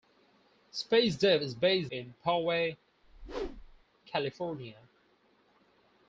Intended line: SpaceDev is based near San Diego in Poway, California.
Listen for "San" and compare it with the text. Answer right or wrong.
wrong